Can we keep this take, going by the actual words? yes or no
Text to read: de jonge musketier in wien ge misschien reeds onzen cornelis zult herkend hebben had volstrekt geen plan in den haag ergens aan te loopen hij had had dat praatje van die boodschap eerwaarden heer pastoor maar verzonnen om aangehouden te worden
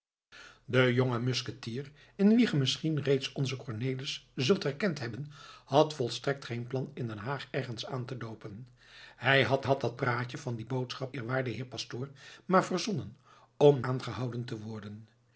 yes